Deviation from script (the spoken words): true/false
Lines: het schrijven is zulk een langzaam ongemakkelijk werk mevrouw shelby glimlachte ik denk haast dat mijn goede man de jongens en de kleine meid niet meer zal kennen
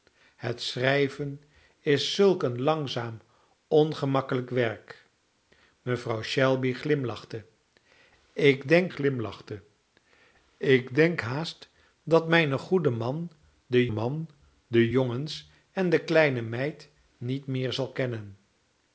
true